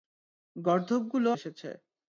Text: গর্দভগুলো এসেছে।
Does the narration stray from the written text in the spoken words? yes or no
no